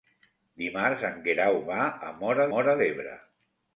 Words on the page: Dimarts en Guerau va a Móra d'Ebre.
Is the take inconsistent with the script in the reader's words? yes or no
yes